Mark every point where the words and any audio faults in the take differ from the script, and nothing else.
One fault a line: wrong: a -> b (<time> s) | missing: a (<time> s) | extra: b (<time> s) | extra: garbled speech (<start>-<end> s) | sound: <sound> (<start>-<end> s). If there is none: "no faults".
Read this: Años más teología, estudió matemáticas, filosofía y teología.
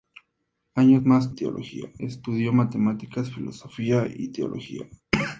no faults